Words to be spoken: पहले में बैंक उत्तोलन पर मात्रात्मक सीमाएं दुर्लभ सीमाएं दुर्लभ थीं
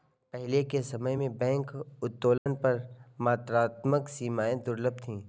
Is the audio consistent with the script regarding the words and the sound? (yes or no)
no